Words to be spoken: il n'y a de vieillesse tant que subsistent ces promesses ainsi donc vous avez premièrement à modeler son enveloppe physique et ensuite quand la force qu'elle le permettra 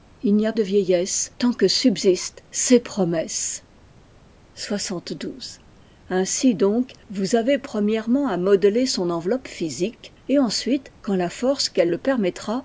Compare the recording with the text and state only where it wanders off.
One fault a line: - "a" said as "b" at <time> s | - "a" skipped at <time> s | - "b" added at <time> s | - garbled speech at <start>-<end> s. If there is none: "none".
none